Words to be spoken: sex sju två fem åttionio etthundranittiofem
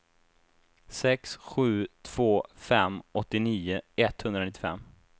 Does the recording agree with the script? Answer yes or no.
yes